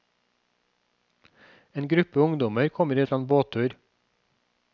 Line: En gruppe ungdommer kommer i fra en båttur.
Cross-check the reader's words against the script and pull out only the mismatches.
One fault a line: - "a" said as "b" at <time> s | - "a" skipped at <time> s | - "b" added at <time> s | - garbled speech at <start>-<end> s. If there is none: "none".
none